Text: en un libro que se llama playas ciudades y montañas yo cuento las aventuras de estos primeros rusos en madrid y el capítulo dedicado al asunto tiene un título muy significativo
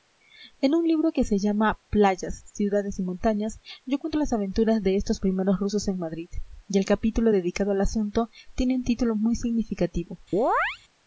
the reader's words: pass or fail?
pass